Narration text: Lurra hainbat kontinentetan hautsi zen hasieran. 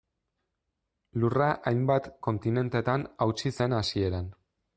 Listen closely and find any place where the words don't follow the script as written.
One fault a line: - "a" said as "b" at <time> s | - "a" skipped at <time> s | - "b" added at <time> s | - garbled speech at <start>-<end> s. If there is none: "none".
none